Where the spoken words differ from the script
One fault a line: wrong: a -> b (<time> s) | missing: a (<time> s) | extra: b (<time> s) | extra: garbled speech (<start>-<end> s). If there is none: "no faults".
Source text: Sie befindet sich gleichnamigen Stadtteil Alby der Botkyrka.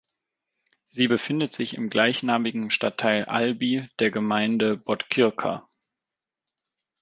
extra: im (1.7 s)
extra: Gemeinde (4.1 s)